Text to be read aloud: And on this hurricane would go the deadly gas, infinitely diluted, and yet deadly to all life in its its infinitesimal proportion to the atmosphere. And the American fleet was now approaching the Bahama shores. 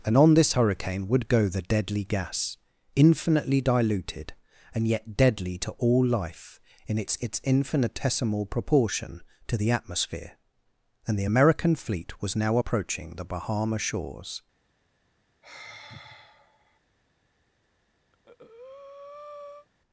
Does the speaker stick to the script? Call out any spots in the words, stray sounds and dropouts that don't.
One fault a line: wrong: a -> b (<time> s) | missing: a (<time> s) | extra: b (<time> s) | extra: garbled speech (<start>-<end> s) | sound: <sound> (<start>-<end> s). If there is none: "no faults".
sound: sigh (15.4-16.8 s)
sound: breath (18.1-19.7 s)